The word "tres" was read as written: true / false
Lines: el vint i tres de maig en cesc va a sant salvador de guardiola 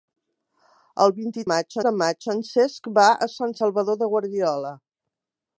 false